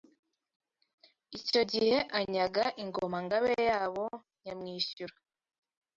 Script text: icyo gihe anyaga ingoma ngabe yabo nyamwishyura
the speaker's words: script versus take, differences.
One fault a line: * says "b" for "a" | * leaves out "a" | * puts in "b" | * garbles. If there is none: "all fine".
all fine